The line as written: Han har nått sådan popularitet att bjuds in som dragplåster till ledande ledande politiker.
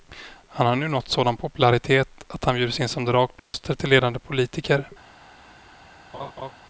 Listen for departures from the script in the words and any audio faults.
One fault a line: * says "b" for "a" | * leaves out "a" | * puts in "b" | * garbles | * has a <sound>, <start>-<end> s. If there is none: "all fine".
* puts in "nu"
* puts in "han"
* has a dropout, 3.4-3.5 s
* leaves out "ledande"
* has a laugh, 6.1-6.5 s